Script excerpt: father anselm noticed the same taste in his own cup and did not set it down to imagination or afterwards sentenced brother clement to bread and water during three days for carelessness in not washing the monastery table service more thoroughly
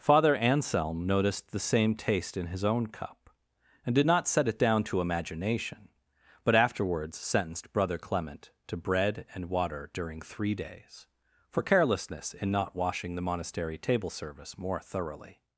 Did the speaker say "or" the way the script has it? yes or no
no